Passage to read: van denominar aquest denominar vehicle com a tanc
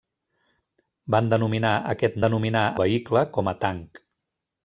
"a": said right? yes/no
yes